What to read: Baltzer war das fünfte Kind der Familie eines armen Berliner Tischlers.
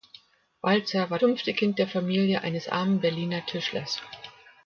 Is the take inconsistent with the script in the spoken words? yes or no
yes